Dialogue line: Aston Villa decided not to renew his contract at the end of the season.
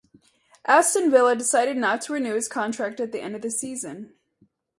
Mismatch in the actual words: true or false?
false